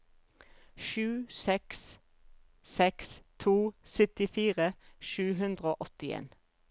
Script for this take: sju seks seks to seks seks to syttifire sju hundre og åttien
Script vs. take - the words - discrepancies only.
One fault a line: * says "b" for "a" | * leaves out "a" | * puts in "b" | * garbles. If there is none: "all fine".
* leaves out "seks seks to"